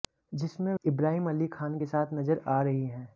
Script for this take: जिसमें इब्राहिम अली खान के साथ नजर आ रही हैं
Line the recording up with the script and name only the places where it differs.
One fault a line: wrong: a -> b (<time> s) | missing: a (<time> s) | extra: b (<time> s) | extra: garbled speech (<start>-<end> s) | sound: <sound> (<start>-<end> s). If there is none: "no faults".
no faults